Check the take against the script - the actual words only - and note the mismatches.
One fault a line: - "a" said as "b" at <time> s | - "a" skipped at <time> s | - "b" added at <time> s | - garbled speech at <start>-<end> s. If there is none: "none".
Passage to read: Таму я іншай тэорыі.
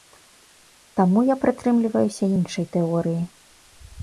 - "прытрымліваюся" added at 1.4 s